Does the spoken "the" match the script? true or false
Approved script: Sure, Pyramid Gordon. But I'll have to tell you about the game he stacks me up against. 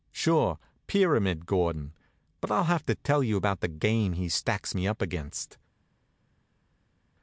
true